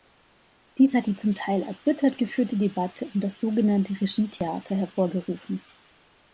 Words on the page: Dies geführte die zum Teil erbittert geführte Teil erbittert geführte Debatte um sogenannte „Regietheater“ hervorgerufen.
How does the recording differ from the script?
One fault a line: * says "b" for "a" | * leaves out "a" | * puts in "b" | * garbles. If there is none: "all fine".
* says "hat" for "geführte"
* leaves out "Teil erbittert geführte"
* puts in "das"